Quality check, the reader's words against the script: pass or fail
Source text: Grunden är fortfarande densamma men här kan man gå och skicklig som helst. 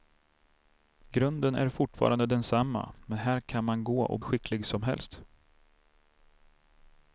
pass